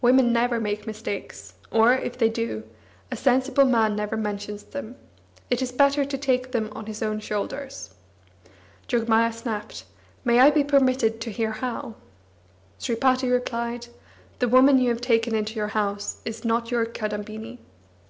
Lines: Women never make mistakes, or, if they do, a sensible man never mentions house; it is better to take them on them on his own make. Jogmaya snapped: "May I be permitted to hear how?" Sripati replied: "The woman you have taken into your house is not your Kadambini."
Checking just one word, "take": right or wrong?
right